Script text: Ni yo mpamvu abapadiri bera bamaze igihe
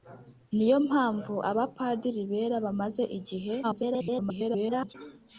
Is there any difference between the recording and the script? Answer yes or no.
yes